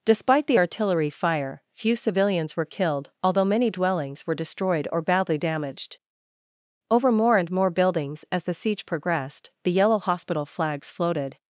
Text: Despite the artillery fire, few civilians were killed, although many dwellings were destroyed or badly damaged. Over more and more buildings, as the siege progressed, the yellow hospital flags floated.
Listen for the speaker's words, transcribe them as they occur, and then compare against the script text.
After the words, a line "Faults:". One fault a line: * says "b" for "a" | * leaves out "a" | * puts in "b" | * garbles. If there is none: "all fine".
Despite the artillery fire, few civilians were killed, although many dwellings were destroyed or badly damaged. Over more and more buildings, as the siege progressed, the yellow hospital flags floated.
Faults:
all fine